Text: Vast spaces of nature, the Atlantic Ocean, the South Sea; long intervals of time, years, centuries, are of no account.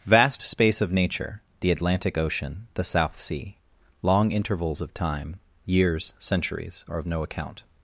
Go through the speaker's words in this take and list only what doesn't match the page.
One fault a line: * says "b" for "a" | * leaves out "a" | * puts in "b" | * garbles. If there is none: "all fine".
* says "space" for "spaces"